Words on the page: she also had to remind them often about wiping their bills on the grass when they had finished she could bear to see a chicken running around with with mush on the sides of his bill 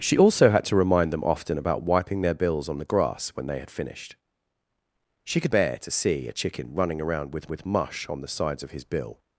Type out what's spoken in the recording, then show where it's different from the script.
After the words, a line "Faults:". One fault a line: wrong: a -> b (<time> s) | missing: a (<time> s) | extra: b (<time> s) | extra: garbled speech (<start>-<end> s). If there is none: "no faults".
she also had to remind them often about wiping their bills on the grass when they had finished she could bear to see a chicken running around with with mush on the sides of his bill
Faults:
no faults